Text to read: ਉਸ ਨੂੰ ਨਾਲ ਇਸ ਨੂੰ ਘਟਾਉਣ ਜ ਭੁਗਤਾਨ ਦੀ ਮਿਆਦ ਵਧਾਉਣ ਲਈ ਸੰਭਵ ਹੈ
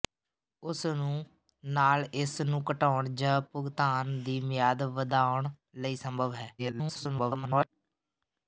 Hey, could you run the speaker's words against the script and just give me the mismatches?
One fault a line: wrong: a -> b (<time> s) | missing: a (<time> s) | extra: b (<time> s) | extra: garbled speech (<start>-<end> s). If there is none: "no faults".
extra: garbled speech (6.6-7.7 s)